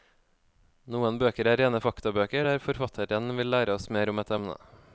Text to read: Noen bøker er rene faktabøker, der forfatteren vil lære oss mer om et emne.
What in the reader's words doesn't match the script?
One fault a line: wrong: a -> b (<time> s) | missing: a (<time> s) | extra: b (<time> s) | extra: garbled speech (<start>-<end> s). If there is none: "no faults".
no faults